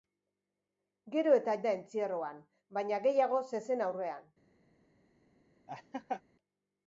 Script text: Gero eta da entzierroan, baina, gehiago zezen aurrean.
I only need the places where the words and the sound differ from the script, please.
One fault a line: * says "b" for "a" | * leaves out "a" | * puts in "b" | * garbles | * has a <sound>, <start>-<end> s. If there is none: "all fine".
* has a laugh, 5.7-6.2 s